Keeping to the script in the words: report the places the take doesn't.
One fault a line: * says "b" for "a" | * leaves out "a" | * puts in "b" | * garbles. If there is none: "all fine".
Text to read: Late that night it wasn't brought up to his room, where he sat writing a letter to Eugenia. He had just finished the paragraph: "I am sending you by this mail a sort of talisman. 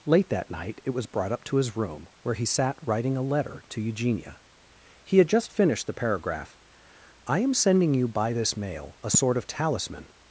* says "was" for "wasn't"